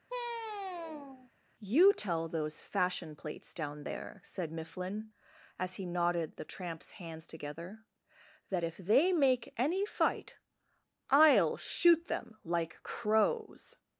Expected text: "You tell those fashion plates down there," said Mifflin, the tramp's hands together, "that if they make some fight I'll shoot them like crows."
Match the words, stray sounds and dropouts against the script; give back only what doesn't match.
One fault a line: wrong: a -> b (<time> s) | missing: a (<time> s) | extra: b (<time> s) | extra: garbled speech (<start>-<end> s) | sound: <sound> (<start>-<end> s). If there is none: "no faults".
sound: sigh (0.1-1.3 s)
extra: as he knotted (5.6 s)
wrong: some -> any (9.6 s)